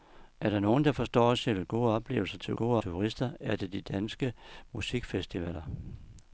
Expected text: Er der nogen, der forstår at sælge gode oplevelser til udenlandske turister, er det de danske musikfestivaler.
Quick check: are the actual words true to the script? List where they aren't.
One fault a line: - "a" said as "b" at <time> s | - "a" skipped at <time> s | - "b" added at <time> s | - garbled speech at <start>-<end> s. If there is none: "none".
- "udenlandske" said as "gode" at 2.5 s